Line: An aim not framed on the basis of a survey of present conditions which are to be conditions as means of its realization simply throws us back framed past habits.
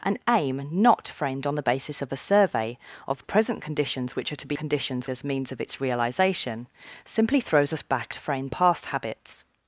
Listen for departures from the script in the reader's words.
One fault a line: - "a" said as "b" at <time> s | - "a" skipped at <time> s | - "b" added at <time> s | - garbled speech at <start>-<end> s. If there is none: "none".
none